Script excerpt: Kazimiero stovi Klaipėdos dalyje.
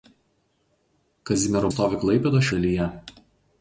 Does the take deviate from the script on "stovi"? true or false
false